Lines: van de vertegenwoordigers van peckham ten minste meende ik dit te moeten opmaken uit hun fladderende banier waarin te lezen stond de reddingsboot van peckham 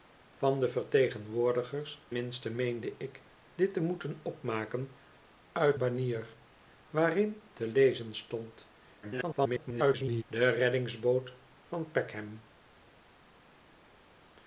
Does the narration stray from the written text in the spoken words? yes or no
yes